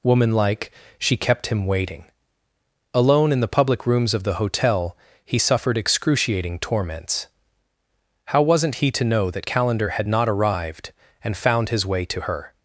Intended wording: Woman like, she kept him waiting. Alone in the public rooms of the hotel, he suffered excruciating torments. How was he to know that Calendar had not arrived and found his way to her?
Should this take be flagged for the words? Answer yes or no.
yes